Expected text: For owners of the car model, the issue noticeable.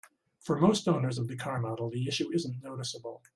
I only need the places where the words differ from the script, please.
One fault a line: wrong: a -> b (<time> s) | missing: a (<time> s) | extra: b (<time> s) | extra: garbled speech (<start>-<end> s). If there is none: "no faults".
extra: most (0.6 s)
extra: isn't (2.3 s)